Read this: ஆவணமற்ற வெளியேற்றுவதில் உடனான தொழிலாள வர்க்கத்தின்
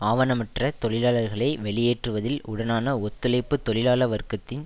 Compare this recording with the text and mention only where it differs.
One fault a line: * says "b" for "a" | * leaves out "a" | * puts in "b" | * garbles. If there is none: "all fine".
* puts in "தொழிலாளர்களை"
* puts in "ஒத்துழைப்பு"